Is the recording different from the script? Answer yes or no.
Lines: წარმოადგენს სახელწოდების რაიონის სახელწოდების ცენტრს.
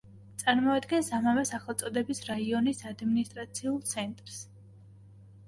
yes